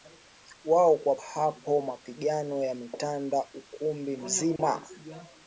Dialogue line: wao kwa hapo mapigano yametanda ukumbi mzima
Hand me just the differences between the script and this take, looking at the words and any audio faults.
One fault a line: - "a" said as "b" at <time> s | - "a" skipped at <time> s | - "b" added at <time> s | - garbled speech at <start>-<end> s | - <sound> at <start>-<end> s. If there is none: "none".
- dropout at 4.6-4.6 s